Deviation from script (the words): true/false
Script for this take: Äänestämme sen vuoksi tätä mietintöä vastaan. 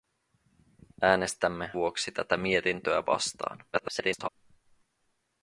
true